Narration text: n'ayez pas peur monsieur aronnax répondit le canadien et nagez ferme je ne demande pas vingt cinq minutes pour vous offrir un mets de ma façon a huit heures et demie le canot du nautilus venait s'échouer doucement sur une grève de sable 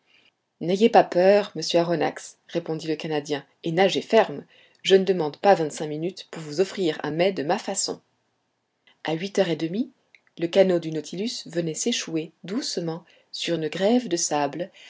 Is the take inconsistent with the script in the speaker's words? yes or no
no